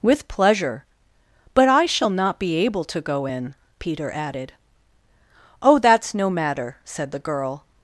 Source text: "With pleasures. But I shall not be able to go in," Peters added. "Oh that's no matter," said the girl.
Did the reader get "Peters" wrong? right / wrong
wrong